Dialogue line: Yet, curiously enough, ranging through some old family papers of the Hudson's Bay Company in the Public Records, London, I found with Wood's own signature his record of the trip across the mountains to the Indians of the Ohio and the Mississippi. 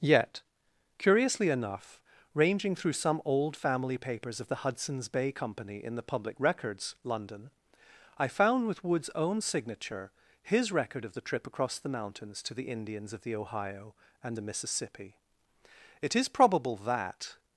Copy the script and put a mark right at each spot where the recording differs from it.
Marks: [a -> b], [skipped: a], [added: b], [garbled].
Yet, curiously enough, ranging through some old family papers of the Hudson's Bay Company in the Public Records, London, I found with Wood's own signature his record of the trip across the mountains to the Indians of the Ohio and the Mississippi. [added: It is probable that]